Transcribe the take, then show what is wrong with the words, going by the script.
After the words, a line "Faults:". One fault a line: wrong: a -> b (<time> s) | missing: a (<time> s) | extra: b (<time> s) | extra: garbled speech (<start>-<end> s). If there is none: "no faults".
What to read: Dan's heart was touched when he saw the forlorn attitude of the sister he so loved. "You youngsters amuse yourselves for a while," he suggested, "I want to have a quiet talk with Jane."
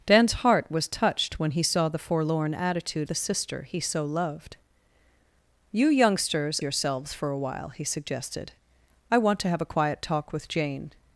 Dan's heart was touched when he saw the forlorn attitude the sister he so loved. "You youngsters yourselves for a while," he suggested, "I want to have a quiet talk with Jane."
Faults:
missing: of (3.1 s)
missing: amuse (6.6 s)